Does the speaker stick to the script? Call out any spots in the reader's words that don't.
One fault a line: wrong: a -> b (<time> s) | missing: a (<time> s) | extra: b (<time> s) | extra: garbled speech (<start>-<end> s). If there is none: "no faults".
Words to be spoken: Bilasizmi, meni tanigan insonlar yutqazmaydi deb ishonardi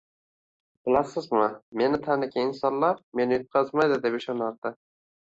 extra: meni (3.2 s)